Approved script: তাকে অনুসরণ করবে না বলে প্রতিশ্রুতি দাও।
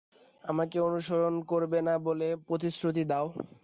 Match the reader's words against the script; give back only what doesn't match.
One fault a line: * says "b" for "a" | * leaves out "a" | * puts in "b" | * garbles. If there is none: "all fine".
* says "আমাকে" for "তাকে"